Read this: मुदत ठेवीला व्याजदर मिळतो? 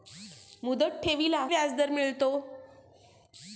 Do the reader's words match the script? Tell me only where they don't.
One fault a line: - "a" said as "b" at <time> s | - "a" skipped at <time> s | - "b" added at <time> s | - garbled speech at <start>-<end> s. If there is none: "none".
none